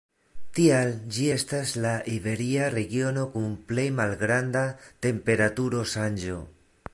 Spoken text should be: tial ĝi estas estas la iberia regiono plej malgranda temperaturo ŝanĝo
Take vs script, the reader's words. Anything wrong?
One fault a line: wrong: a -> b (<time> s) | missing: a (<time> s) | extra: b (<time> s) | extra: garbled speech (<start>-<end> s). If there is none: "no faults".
missing: estas (1.7 s)
extra: kun (3.4 s)